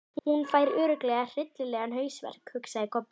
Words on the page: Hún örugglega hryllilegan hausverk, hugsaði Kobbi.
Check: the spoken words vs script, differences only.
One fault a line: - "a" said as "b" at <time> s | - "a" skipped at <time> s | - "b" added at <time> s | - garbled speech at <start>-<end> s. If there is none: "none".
- "fær" added at 0.5 s